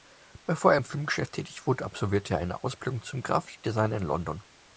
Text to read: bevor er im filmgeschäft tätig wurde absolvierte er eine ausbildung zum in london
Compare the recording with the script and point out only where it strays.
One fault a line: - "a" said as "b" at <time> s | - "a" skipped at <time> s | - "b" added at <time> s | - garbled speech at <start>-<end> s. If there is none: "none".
- "grafikdesigner" added at 3.2 s